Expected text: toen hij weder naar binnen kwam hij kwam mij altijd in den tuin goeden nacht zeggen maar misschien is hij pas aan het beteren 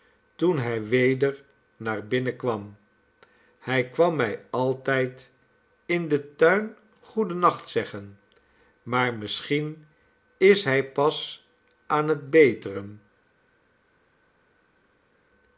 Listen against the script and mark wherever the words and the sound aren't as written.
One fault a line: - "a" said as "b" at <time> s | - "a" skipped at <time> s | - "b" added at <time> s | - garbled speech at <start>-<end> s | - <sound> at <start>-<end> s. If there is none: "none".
none